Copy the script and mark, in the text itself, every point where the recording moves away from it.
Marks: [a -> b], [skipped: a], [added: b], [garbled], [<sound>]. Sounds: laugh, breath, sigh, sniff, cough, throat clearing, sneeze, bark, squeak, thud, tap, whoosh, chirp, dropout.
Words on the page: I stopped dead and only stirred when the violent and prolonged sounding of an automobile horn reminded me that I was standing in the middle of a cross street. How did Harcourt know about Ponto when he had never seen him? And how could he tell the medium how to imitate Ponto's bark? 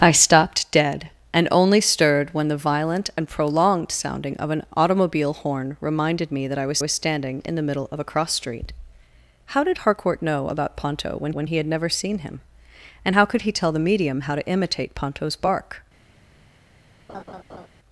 I stopped dead and only stirred when the violent and prolonged sounding of an automobile horn reminded me that I was [added: was] standing in the middle of a cross street. How did Harcourt know about Ponto when [added: when] he had never seen him? And how could he tell the medium how to imitate Ponto's bark? [laugh]